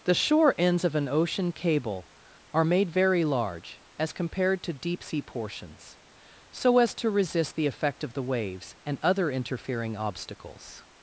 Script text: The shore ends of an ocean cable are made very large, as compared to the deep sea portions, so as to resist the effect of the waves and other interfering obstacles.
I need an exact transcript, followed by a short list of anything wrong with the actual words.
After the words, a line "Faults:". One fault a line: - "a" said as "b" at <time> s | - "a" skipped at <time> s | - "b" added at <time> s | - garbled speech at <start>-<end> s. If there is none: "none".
The shore ends of an ocean cable are made very large, as compared to deep sea portions, so as to resist the effect of the waves and other interfering obstacles.
Faults:
- "the" skipped at 4.7 s